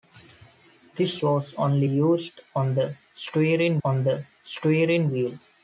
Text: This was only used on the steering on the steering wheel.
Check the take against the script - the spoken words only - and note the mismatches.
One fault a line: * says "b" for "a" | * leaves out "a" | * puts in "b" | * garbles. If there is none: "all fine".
all fine